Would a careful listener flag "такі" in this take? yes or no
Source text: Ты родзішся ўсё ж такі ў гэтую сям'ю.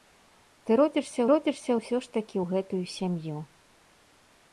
no